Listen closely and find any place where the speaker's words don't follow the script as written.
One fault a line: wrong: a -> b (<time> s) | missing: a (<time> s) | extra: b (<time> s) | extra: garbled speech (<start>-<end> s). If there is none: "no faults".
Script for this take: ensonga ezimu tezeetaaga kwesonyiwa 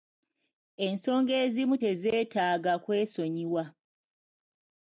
no faults